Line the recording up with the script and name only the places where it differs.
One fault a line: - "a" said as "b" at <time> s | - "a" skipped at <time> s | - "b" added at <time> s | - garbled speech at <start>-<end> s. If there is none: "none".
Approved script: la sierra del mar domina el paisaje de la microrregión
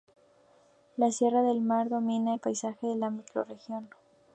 none